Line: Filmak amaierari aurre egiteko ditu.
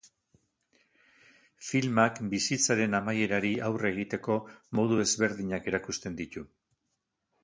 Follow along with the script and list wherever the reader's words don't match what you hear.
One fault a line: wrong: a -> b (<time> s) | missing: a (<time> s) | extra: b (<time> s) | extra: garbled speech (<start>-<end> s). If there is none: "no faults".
extra: bizitzaren (2.3 s)
extra: modu ezberdinak erakusten (4.8 s)